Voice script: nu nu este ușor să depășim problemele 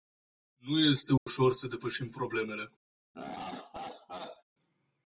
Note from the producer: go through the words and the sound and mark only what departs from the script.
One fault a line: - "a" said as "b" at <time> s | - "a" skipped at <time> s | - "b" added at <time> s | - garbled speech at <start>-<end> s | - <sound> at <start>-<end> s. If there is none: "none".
- "nu" skipped at 0.8 s
- dropout at 1.2-1.3 s
- laugh at 3.1-4.4 s